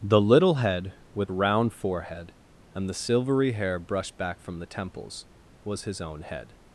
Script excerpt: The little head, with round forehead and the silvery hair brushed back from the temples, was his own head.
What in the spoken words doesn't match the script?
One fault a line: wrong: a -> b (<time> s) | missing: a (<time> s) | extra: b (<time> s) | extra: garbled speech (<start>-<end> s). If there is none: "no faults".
no faults